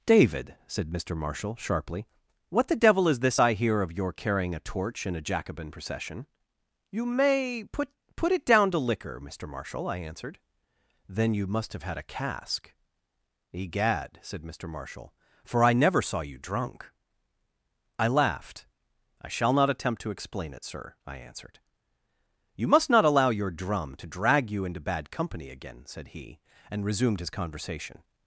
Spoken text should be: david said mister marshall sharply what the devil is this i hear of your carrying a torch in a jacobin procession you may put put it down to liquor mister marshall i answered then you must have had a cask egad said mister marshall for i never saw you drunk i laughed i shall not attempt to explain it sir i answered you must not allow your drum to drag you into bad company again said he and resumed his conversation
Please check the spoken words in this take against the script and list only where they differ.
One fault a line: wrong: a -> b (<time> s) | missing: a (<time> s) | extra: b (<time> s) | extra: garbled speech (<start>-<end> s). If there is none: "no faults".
no faults